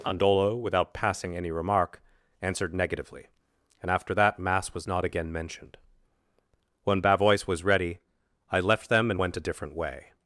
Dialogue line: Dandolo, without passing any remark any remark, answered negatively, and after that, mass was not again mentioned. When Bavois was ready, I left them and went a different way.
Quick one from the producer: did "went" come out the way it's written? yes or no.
yes